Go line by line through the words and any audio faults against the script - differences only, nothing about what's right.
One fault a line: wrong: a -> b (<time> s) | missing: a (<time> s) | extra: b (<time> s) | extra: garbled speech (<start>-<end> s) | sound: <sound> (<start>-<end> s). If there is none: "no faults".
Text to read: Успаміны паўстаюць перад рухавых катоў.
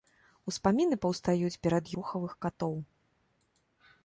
no faults